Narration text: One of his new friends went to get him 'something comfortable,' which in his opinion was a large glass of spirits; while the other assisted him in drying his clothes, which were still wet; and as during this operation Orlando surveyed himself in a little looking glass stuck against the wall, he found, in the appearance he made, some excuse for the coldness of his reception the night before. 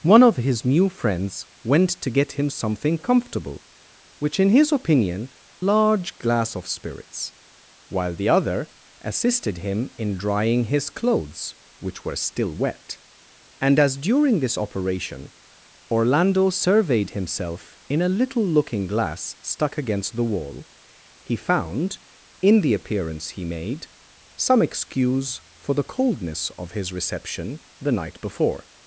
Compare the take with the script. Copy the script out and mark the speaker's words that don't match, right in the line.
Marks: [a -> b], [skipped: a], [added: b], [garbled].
One of his new friends went to get him 'something comfortable,' which in his opinion [skipped: was a] large glass of spirits; while the other assisted him in drying his clothes, which were still wet; and as during this operation Orlando surveyed himself in a little looking glass stuck against the wall, he found, in the appearance he made, some excuse for the coldness of his reception the night before.